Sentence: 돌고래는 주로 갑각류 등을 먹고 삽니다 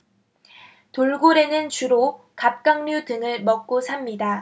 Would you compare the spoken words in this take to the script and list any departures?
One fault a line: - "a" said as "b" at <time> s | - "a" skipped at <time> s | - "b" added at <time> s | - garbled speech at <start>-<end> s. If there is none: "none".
none